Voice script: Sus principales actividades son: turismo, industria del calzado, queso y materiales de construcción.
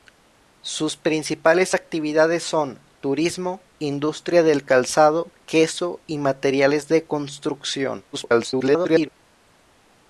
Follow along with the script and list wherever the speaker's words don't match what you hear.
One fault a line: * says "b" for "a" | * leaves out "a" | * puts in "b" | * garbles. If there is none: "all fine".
* garbles